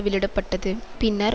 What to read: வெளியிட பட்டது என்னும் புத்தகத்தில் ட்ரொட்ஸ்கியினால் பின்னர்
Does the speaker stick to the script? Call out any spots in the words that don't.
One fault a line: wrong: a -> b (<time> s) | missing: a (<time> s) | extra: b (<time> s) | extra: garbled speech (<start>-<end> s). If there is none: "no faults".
missing: என்னும் புத்தகத்தில் ட்ரொட்ஸ்கியினால் (0.7 s)